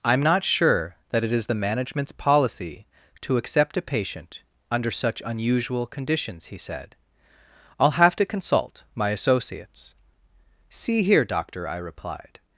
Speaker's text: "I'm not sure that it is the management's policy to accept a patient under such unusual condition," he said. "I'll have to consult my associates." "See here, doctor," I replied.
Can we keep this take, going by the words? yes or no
no